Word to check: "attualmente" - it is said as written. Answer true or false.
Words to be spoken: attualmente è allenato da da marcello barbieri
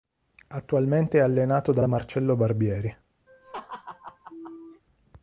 true